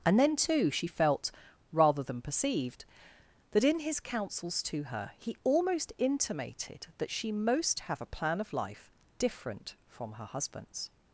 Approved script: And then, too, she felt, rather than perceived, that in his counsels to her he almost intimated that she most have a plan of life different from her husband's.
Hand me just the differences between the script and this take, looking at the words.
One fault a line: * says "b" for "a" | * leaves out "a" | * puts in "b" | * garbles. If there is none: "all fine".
all fine